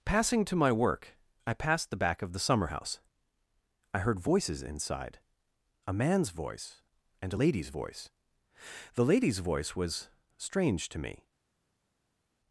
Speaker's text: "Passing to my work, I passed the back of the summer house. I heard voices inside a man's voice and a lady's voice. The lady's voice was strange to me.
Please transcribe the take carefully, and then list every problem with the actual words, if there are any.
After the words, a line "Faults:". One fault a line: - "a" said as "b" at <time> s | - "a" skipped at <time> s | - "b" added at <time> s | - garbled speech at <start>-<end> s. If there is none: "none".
"Passing to my work, I passed the back of the summer house. I heard voices inside a man's voice and a lady's voice. The lady's voice was strange to me.
Faults:
none